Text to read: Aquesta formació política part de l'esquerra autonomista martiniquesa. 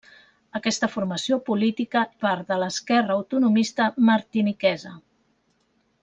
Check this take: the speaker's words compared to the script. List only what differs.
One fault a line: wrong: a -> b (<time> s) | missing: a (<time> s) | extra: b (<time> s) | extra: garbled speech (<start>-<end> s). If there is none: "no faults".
no faults